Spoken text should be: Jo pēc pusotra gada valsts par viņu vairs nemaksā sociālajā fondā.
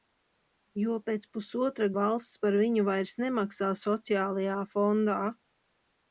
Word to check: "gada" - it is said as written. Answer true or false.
false